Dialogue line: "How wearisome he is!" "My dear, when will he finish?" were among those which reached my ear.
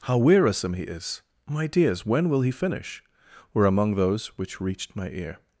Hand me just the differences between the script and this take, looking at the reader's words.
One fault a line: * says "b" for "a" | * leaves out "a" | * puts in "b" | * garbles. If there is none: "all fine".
* says "dears" for "dear"